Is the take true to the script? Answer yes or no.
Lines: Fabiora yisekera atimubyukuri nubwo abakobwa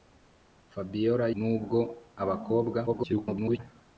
no